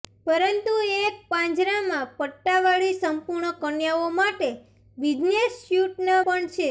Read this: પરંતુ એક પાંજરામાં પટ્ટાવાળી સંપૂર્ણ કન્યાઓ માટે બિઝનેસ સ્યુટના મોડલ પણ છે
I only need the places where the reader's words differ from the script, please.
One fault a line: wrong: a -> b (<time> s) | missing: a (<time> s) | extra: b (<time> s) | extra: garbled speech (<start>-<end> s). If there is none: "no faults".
missing: મોડલ (6.2 s)